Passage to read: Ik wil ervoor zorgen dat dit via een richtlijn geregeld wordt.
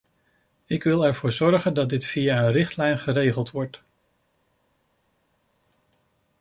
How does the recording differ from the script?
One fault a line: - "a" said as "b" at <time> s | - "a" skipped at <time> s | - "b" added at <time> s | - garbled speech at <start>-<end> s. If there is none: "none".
none